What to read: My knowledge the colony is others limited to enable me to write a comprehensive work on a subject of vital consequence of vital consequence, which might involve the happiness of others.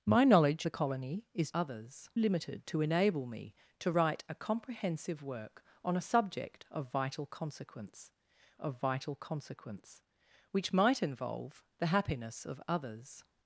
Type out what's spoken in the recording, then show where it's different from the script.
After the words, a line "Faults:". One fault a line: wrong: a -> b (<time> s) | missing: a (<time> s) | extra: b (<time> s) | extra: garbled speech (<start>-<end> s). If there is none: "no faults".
My knowledge the colony is others limited to enable me to write a comprehensive work on a subject of vital consequence of vital consequence, which might involve the happiness of others.
Faults:
no faults